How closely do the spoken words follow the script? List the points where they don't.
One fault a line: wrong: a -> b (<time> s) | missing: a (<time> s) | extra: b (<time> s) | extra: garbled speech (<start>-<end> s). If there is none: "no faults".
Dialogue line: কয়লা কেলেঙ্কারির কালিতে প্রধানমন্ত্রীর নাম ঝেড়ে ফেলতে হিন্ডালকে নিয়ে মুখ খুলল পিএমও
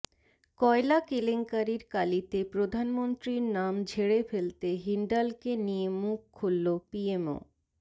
no faults